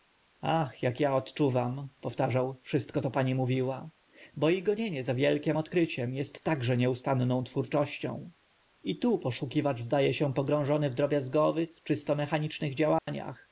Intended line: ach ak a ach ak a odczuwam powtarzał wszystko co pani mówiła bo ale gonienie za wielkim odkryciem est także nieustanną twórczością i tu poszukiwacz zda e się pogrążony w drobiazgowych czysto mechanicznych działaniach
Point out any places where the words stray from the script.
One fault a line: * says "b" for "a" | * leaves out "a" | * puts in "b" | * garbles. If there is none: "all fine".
* leaves out "ach ak a"
* says "i" for "ale"